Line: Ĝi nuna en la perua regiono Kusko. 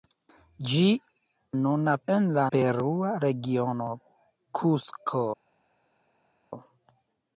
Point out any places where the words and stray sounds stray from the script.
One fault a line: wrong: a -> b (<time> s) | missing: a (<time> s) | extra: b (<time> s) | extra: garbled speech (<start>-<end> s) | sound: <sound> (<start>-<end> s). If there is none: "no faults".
no faults